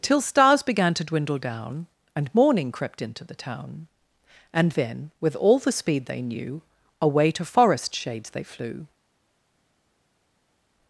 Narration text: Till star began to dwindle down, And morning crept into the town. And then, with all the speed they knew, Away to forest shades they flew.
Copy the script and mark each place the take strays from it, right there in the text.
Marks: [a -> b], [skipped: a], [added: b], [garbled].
Till [star -> stars] began to dwindle down, And morning crept into the town. And then, with all the speed they knew, Away to forest shades they flew.